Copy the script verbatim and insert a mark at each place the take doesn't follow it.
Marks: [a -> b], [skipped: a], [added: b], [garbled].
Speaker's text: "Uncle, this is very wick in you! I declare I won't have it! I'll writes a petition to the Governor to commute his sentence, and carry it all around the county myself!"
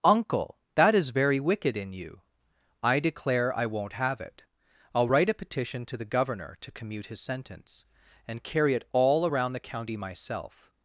"Uncle, [this -> that] is very [wick -> wicked] in you! I declare I won't have it! I'll [writes -> write] a petition to the Governor to commute his sentence, and carry it all around the county myself!"